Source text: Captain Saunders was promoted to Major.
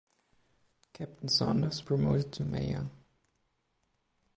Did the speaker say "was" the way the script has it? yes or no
no